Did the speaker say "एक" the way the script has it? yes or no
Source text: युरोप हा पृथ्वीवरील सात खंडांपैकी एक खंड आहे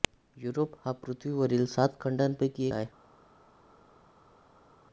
no